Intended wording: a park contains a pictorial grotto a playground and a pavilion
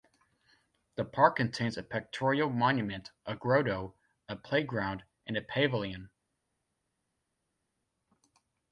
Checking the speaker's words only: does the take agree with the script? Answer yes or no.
no